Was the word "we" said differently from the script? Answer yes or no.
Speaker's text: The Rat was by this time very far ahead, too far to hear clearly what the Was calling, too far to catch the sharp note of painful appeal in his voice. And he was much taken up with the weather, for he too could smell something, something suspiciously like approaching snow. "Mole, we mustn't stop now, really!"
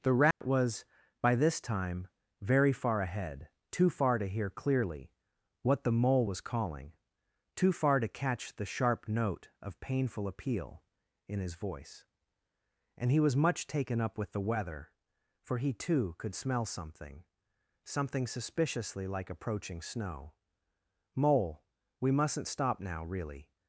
no